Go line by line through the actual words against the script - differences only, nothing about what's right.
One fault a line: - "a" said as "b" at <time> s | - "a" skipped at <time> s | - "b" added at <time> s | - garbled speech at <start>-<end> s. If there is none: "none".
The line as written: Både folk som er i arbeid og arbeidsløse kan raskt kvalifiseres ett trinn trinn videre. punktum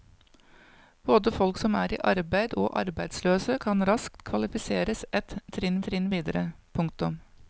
none